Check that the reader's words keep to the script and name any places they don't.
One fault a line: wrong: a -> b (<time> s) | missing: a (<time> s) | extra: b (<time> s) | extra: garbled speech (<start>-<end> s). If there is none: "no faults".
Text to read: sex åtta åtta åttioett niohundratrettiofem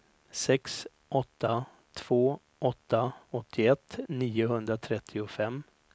extra: två (1.9 s)